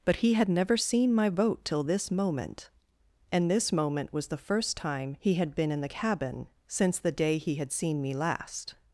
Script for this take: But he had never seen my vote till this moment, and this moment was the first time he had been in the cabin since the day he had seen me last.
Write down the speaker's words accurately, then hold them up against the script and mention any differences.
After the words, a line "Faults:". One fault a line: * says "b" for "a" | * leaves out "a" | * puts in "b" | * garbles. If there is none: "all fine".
But he had never seen my vote till this moment, and this moment was the first time he had been in the cabin since the day he had seen me last.
Faults:
all fine